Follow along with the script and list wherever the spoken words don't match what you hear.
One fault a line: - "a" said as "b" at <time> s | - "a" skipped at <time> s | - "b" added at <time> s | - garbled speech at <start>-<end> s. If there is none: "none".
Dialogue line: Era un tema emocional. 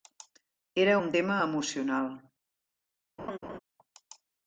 none